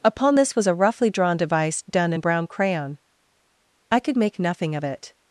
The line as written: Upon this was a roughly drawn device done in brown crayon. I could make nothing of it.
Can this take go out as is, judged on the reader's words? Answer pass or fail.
pass